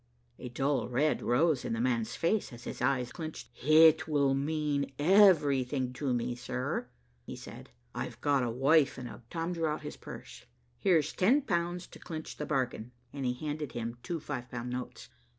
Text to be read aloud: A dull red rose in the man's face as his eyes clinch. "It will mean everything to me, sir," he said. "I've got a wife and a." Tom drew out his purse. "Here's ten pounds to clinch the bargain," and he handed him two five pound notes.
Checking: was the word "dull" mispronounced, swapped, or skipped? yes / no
no